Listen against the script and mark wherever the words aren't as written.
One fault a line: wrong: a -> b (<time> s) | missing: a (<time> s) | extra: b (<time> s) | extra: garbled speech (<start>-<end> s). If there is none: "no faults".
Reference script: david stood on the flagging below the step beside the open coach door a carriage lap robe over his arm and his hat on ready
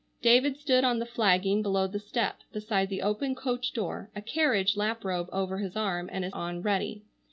missing: hat (6.4 s)